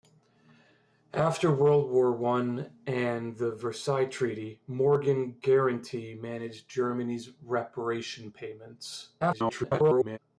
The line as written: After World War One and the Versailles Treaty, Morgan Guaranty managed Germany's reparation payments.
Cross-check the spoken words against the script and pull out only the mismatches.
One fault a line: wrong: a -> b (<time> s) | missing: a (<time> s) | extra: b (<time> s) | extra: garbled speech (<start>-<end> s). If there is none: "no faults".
extra: garbled speech (9.2-10.2 s)